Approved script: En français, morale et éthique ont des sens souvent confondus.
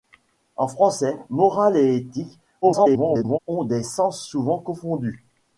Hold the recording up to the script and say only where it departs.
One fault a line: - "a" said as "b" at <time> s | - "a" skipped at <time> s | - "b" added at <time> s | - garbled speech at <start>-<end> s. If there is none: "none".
- garbled speech at 2.6-3.4 s